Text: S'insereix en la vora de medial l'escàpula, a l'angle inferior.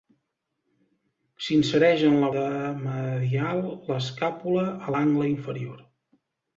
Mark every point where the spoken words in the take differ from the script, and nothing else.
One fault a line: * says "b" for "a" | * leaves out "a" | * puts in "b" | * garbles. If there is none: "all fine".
* leaves out "vora"